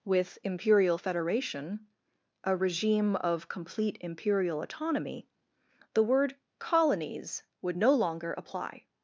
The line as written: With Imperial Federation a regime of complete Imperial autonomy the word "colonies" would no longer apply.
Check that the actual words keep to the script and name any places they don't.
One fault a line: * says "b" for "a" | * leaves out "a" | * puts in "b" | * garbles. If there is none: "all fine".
all fine